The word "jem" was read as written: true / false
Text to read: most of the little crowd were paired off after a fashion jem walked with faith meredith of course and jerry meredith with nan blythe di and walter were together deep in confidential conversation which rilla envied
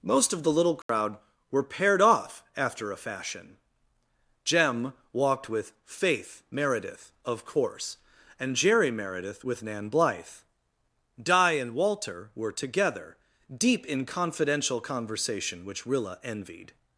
true